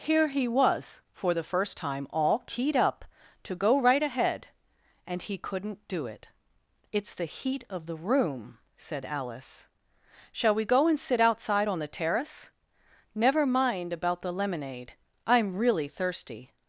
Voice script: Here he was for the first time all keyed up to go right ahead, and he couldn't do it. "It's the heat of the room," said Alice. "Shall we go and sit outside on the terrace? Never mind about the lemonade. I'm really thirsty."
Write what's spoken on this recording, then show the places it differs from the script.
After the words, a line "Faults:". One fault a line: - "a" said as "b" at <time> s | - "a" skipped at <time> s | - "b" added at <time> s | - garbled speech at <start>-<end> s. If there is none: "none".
Here he was for the first time all keyed up to go right ahead, and he couldn't do it. "It's the heat of the room," said Alice. "Shall we go and sit outside on the terrace? Never mind about the lemonade. I'm really thirsty."
Faults:
none